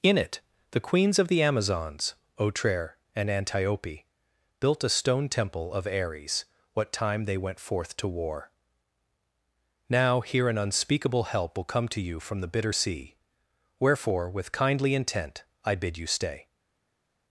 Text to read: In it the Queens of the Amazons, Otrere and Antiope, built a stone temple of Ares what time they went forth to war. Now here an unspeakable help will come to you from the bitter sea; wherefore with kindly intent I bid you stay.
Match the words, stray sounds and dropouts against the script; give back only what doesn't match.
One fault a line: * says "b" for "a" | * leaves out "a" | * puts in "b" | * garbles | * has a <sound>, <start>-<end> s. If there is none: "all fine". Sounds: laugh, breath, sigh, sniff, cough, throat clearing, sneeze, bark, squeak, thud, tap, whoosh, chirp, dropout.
all fine